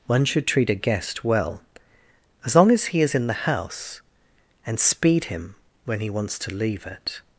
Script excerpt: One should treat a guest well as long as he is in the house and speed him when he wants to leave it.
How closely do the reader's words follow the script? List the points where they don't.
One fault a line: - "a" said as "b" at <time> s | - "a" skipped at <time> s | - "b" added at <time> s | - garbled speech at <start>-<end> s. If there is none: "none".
none